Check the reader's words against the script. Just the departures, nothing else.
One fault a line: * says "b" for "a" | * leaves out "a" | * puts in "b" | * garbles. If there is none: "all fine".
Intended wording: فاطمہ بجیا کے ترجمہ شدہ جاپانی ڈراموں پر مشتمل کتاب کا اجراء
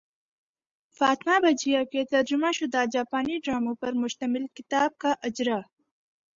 all fine